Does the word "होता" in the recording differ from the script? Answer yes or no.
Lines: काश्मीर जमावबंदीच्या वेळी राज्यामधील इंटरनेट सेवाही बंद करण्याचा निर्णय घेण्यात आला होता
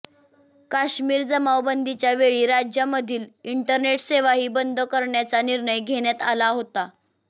no